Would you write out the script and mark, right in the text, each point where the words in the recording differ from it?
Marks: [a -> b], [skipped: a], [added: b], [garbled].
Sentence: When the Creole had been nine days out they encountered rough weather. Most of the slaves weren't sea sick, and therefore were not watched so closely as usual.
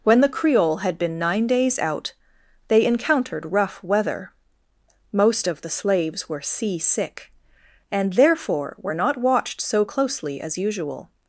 When the Creole had been nine days out they encountered rough weather. Most of the slaves [weren't -> were] sea sick, and therefore were not watched so closely as usual.